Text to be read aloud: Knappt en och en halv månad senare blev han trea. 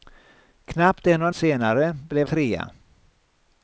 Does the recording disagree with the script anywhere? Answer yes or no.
yes